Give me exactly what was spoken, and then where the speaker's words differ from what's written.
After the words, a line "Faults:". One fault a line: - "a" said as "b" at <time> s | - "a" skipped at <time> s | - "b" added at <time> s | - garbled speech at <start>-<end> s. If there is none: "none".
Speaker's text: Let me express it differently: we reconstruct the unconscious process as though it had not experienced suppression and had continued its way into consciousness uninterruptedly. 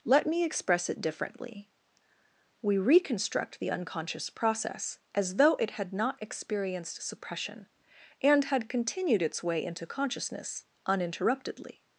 Let me express it differently: we reconstruct the unconscious process as though it had not experienced suppression and had continued its way into consciousness uninterruptedly.
Faults:
none